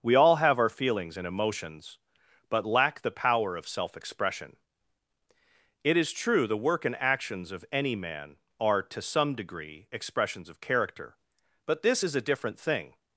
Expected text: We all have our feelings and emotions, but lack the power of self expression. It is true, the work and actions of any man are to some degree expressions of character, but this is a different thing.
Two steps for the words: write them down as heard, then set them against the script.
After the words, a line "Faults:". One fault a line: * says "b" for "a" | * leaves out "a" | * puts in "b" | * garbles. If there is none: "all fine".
We all have our feelings and emotions, but lack the power of self expression. It is true, the work and actions of any man are to some degree expressions of character, but this is a different thing.
Faults:
all fine